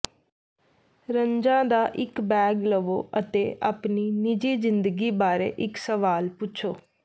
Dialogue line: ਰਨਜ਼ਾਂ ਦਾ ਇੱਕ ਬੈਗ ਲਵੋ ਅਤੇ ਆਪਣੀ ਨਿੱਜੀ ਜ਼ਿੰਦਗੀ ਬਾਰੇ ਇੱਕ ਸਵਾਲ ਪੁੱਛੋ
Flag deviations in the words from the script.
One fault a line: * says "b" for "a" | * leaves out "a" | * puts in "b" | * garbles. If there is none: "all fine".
all fine